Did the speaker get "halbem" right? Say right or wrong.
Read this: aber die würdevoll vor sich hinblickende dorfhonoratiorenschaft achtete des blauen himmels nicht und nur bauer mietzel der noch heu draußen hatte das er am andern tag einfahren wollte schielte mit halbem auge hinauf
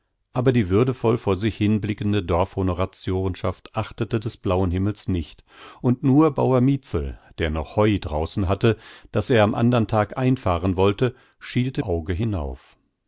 wrong